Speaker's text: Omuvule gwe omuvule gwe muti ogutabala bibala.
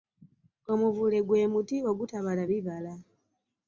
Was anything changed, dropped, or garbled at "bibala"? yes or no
no